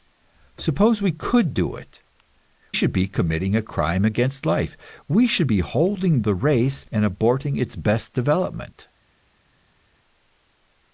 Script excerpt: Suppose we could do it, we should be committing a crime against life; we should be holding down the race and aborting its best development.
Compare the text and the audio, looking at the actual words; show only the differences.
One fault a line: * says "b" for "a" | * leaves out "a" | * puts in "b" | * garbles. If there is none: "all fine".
* leaves out "we"
* leaves out "down"